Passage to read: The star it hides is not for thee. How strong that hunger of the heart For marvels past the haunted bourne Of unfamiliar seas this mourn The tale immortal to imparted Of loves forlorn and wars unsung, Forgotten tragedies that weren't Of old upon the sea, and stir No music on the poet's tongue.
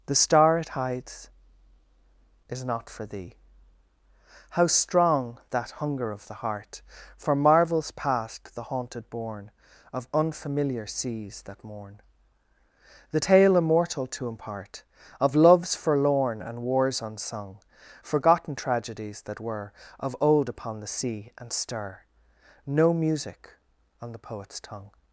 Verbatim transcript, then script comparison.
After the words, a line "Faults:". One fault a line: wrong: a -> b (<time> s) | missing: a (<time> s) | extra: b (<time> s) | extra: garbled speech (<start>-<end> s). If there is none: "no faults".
The star it hides is not for thee. How strong that hunger of the heart For marvels past the haunted bourne Of unfamiliar seas that mourn The tale immortal to impart Of loves forlorn and wars unsung, Forgotten tragedies that were Of old upon the sea, and stir No music on the poet's tongue.
Faults:
wrong: this -> that (11.4 s)
wrong: imparted -> impart (14.3 s)
wrong: weren't -> were (19.4 s)